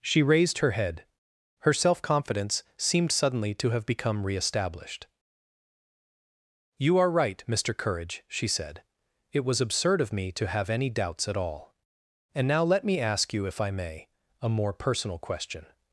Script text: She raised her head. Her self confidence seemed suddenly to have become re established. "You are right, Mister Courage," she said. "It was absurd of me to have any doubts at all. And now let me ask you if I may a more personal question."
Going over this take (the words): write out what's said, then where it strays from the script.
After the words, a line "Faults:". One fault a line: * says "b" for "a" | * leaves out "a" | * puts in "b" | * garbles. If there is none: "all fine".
She raised her head. Her self confidence seemed suddenly to have become re established. "You are right, Mister Courage," she said. "It was absurd of me to have any doubts at all. And now let me ask you if I may a more personal question."
Faults:
all fine